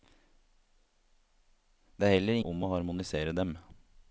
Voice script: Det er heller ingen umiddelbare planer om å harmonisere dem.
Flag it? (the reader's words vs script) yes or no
yes